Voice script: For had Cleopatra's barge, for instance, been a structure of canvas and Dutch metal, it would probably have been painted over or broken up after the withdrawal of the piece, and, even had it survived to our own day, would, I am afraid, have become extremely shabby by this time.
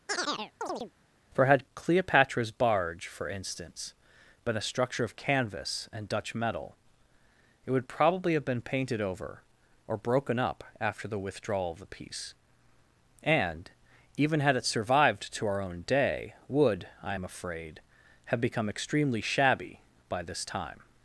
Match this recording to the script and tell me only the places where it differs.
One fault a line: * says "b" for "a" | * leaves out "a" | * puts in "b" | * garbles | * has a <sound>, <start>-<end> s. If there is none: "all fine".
* has a chirp, 0.1-0.9 s